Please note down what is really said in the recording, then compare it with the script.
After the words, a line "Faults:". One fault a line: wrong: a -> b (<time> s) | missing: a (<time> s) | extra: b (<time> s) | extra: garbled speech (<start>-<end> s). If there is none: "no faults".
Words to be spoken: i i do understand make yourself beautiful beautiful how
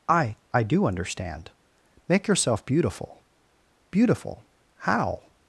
i i do understand make yourself beautiful beautiful how
Faults:
no faults